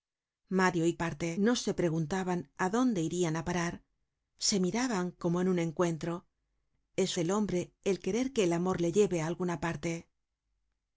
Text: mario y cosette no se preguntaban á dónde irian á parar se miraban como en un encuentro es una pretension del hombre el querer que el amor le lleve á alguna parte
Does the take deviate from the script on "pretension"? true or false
true